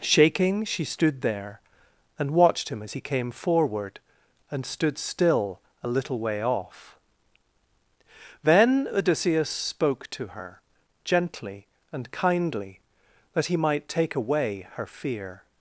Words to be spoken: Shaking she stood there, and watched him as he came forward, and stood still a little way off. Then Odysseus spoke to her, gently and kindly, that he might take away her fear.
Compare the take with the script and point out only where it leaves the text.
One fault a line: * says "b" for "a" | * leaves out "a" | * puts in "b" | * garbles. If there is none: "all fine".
all fine